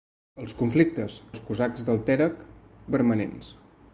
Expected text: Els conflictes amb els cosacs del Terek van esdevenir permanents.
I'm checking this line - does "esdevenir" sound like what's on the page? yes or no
no